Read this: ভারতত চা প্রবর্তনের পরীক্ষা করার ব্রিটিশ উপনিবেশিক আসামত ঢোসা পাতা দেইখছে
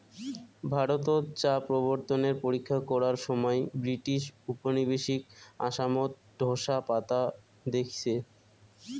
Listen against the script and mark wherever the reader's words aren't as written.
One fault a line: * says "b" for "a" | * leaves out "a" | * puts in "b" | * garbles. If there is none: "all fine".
* puts in "সমাই"